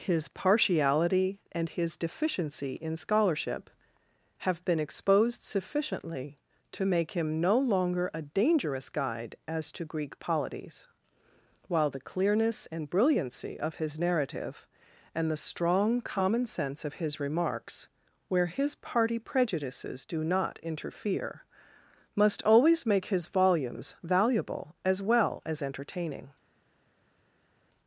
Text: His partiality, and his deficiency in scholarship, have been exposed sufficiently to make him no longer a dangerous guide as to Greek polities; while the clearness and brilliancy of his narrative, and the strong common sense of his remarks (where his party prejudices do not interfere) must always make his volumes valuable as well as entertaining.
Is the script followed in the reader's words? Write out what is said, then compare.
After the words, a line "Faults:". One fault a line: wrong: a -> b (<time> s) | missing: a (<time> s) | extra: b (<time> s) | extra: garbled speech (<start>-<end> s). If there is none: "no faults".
His partiality, and his deficiency in scholarship, have been exposed sufficiently to make him no longer a dangerous guide as to Greek polities; while the clearness and brilliancy of his narrative, and the strong common sense of his remarks (where his party prejudices do not interfere) must always make his volumes valuable as well as entertaining.
Faults:
no faults